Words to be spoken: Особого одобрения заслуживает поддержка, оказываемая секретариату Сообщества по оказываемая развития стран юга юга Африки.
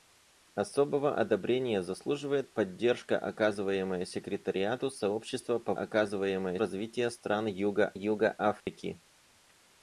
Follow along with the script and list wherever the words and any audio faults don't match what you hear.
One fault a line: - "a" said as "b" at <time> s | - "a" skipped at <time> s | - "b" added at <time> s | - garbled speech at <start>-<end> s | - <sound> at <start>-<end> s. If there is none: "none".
- dropout at 8.6-8.7 s